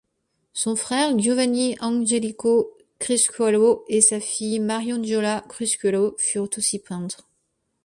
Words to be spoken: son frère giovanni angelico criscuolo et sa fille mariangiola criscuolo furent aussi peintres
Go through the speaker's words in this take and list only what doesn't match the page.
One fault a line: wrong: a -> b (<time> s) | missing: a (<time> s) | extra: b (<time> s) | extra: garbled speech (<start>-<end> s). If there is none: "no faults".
no faults